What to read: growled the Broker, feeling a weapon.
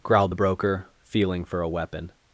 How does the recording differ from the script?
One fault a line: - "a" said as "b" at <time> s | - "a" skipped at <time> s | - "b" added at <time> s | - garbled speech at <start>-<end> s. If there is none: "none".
- "for" added at 1.4 s